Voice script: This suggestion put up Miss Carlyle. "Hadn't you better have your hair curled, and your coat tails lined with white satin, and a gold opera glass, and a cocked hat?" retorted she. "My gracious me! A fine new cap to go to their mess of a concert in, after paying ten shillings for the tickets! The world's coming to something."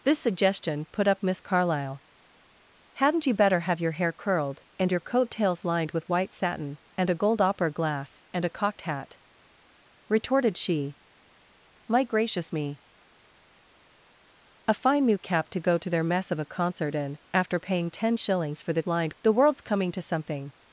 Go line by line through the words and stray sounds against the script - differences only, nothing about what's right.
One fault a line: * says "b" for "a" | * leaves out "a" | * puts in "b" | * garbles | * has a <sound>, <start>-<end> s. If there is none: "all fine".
* says "lined" for "tickets"